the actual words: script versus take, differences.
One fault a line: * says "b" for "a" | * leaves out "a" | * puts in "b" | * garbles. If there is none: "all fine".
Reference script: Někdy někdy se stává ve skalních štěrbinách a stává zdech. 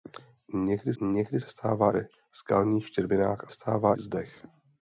all fine